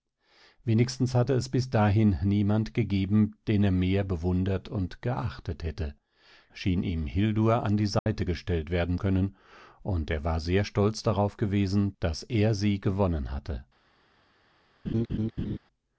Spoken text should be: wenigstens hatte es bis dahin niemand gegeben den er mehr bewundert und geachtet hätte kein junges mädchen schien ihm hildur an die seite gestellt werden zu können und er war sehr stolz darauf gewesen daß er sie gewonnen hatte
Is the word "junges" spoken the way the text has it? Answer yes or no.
no